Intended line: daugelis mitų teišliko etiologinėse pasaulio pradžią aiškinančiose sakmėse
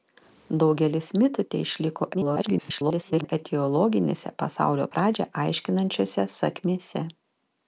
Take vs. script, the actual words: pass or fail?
fail